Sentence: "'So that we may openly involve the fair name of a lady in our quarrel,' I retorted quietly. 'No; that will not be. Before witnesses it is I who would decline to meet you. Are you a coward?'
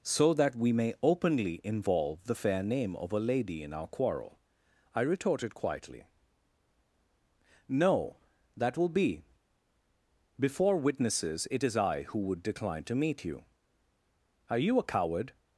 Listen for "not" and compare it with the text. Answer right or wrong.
wrong